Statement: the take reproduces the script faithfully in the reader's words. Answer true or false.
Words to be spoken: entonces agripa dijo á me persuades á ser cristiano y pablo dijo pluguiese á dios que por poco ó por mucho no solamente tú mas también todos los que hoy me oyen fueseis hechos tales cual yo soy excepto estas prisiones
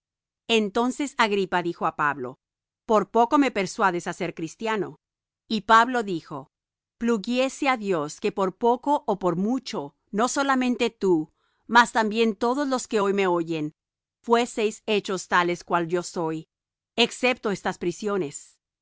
false